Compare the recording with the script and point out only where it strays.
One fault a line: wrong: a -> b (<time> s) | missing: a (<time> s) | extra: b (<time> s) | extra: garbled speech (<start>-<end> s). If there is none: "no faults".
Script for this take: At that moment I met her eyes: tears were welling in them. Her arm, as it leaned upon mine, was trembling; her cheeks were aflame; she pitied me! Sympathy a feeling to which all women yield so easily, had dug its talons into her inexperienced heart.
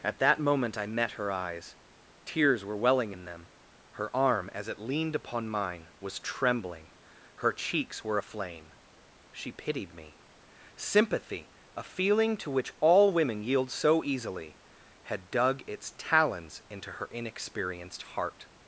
no faults